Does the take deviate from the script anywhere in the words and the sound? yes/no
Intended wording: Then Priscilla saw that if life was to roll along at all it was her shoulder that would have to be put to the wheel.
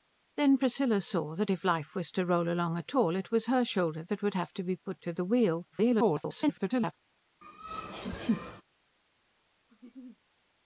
yes